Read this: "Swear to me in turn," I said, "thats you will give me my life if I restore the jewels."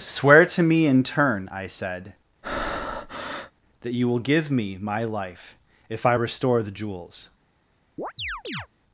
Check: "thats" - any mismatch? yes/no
yes